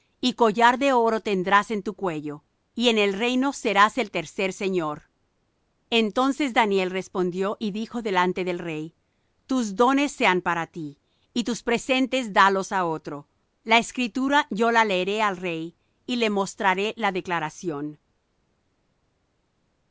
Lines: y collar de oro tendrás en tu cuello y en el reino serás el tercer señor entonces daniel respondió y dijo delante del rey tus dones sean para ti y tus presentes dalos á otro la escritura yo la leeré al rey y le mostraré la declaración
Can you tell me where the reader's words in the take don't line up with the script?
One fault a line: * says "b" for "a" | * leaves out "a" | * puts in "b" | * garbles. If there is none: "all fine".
all fine